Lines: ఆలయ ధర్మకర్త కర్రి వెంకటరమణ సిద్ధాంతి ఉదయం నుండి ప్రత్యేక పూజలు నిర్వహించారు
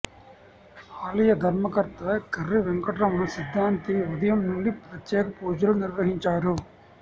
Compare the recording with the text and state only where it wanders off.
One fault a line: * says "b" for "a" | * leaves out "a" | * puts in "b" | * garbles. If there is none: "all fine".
all fine